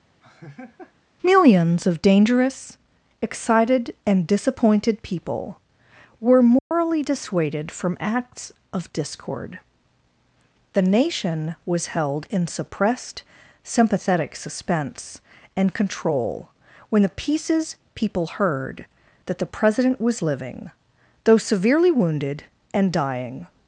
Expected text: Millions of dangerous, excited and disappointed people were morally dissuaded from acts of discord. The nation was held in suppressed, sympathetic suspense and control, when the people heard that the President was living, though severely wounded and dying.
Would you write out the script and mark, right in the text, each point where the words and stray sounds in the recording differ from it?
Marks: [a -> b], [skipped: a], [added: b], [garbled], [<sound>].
[laugh] Millions of dangerous, excited and disappointed people were morally [dropout] dissuaded from acts of discord. The nation was held in suppressed, sympathetic suspense and control, when the [added: pieces] people heard that the President was living, though severely wounded and dying.